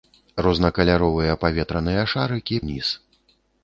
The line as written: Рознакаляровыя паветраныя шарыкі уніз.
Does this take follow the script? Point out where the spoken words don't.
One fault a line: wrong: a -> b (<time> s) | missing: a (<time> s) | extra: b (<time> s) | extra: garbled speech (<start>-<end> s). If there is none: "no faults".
no faults